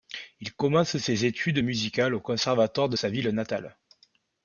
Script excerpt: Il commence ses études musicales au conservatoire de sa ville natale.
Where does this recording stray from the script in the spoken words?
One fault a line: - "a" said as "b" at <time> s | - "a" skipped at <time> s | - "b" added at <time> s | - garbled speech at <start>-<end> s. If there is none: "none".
none